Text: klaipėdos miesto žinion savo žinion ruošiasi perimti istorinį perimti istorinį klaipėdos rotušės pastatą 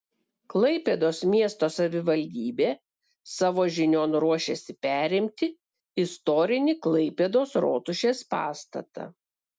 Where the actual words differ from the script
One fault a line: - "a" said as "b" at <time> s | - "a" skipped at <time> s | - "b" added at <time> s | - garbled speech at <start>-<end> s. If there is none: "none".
- "žinion" said as "savivaldybė" at 1.7 s
- "perimti istorinį" skipped at 6.8 s